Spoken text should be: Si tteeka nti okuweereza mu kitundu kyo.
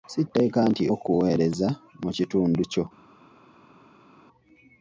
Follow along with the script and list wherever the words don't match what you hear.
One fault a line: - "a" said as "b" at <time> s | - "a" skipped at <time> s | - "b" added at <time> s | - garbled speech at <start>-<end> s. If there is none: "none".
none